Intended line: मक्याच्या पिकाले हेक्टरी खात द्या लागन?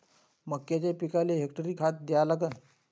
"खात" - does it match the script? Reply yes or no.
yes